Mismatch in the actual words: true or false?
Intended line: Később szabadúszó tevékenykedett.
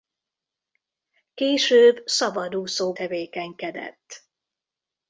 false